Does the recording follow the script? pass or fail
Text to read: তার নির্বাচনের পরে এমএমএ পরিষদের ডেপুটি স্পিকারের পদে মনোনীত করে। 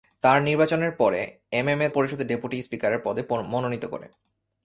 pass